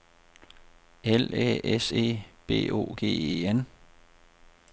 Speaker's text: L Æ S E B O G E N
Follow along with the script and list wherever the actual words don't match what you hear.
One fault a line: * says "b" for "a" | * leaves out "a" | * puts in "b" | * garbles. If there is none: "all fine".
all fine